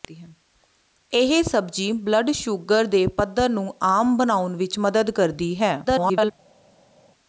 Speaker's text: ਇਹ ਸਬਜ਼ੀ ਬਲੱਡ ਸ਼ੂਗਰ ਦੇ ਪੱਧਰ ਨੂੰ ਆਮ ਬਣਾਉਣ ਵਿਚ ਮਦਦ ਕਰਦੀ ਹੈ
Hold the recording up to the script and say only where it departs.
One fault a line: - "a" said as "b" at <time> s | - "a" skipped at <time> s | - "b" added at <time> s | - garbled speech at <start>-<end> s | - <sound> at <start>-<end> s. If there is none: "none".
- garbled speech at 5.8-6.3 s